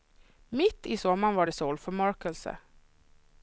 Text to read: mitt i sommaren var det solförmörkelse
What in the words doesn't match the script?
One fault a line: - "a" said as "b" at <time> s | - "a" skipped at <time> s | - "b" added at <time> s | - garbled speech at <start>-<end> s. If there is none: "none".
none